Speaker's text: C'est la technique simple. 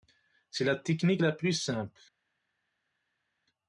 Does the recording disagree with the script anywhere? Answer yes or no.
yes